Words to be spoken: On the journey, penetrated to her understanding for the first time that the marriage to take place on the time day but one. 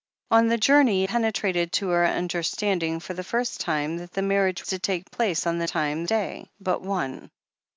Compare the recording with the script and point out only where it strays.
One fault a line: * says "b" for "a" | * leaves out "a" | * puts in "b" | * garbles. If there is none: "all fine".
all fine